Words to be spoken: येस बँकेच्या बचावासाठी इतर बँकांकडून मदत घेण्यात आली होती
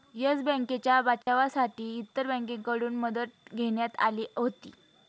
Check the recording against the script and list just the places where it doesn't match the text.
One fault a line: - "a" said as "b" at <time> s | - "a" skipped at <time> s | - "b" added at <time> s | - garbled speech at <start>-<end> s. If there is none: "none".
none